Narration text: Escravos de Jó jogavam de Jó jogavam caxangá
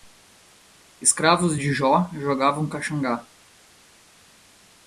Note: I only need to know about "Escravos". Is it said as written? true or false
true